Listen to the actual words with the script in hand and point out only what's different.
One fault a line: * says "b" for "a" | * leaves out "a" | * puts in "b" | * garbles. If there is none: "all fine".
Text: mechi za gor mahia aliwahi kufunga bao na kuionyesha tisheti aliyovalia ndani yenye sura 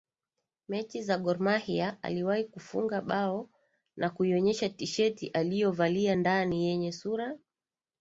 all fine